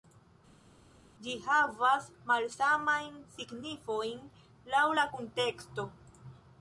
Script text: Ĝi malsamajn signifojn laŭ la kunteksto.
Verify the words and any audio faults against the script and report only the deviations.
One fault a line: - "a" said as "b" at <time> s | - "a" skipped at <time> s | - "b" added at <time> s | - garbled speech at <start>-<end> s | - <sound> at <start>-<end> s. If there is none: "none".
- "havas" added at 1.5 s